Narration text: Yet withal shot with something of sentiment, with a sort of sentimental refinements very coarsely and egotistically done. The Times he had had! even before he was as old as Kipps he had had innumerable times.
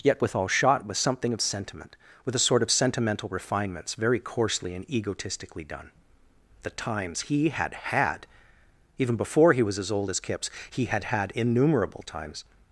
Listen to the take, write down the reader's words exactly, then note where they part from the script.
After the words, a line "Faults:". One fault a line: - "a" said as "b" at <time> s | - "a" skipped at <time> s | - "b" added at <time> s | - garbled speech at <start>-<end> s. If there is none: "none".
Yet withal shot with something of sentiment, with a sort of sentimental refinements very coarsely and egotistically done. The Times he had had! even before he was as old as Kipps he had had innumerable times.
Faults:
none